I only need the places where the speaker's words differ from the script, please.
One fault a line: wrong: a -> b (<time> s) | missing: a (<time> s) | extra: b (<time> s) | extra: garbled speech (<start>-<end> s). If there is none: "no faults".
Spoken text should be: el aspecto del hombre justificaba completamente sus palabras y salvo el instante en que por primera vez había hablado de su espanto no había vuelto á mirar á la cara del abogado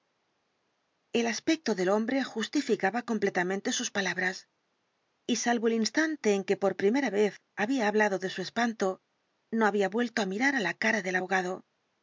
no faults